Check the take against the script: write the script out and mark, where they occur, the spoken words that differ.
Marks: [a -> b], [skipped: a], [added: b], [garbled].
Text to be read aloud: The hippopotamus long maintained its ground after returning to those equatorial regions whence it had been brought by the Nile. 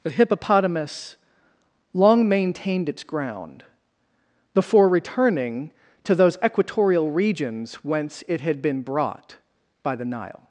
The hippopotamus long maintained its ground [after -> before] returning to those equatorial regions whence it had been brought by the Nile.